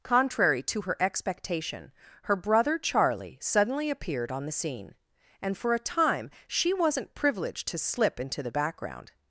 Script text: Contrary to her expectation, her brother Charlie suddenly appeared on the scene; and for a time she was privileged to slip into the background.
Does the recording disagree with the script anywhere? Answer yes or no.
yes